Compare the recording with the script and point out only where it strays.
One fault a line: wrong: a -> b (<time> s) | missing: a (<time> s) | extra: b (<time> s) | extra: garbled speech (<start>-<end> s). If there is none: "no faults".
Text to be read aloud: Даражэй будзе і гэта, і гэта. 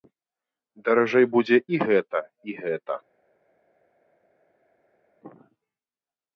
no faults